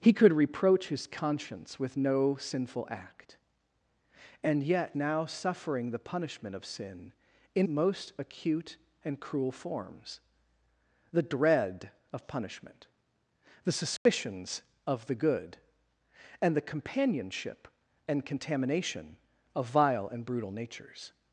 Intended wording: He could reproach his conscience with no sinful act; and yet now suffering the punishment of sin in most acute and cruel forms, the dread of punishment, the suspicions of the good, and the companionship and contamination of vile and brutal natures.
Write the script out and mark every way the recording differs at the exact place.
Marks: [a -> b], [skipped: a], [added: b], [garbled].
He could reproach his conscience with no sinful act; and yet now suffering the punishment of sin in most acute and cruel forms, the dread of punishment, the suspicions of the good, and the companionship and contamination of vile and brutal natures.